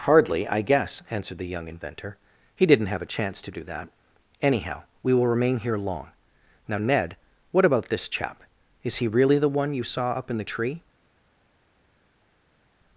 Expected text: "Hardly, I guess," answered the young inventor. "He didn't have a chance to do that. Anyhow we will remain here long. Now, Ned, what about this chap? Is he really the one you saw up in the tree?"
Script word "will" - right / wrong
right